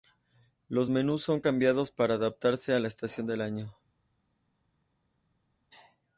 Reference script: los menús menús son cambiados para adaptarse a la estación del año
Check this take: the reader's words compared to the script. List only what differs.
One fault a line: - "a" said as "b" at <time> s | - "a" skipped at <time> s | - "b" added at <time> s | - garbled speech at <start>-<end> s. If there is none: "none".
- "menús" skipped at 1.2 s